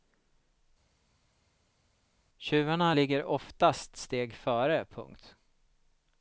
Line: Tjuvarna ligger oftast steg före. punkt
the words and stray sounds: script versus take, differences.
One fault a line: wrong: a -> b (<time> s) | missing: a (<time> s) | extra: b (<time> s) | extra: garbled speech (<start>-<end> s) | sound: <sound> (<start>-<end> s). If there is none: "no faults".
no faults